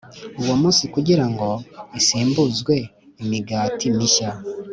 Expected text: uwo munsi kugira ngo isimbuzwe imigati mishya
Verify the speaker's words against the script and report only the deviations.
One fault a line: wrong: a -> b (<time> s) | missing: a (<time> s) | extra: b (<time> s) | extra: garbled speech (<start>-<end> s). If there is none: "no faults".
no faults